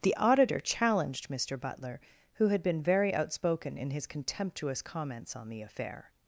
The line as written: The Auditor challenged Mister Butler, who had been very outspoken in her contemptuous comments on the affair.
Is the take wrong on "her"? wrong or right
wrong